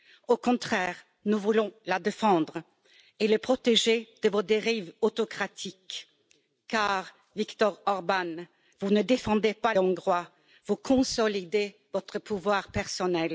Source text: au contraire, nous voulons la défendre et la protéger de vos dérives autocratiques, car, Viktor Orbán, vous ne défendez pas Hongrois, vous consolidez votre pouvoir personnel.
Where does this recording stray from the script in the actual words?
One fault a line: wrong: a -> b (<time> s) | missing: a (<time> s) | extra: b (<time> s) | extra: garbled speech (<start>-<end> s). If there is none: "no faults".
no faults